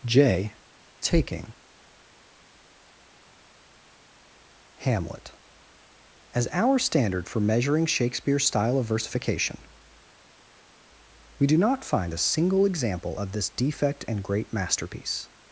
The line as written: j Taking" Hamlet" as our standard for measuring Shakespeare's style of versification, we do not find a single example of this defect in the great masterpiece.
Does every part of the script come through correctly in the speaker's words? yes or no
no